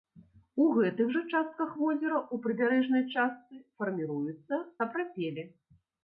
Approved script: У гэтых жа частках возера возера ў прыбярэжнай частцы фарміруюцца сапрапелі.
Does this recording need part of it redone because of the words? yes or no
yes